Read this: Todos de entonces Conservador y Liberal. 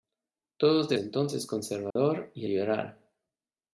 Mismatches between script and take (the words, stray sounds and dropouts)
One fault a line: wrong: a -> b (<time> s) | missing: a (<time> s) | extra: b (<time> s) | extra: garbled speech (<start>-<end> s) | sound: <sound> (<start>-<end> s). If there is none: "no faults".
sound: dropout (1.9-2.0 s)